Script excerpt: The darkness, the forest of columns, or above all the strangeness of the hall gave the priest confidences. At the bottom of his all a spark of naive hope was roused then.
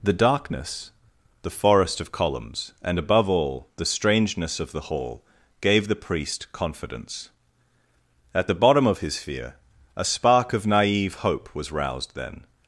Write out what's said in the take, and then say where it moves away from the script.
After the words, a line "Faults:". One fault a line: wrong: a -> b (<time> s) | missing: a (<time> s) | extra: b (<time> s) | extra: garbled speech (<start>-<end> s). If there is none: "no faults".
The darkness, the forest of columns, and above all the strangeness of the hall gave the priest confidence. At the bottom of his fear a spark of naive hope was roused then.
Faults:
wrong: or -> and (2.8 s)
wrong: confidences -> confidence (6.5 s)
wrong: all -> fear (9.2 s)